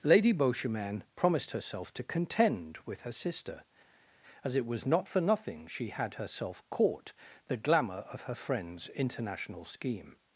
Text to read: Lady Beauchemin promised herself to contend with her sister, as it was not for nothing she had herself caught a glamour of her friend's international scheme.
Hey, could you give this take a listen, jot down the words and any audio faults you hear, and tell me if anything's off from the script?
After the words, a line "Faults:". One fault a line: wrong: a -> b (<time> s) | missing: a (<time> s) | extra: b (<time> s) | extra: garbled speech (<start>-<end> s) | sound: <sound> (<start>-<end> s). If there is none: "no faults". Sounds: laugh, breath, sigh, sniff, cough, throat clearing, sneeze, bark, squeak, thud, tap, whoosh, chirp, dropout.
Lady Beauchemin promised herself to contend with her sister, as it was not for nothing she had herself caught the glamour of her friend's international scheme.
Faults:
wrong: a -> the (7.5 s)